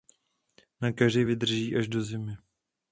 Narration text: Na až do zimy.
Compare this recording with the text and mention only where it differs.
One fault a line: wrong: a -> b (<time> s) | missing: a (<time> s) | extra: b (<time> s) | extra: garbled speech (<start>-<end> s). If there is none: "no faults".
extra: keři vydrží (0.9 s)